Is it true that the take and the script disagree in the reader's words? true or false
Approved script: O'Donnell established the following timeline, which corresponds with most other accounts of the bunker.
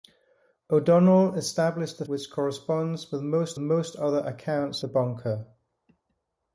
true